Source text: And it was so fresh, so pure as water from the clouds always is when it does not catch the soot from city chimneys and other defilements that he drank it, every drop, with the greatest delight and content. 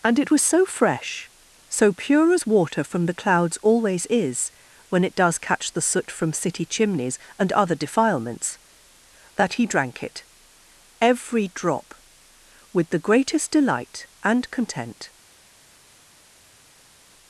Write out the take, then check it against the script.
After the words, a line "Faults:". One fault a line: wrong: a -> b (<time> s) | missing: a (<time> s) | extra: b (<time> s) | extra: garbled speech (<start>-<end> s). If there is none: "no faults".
And it was so fresh, so pure as water from the clouds always is when it does catch the soot from city chimneys and other defilements that he drank it, every drop, with the greatest delight and content.
Faults:
missing: not (5.4 s)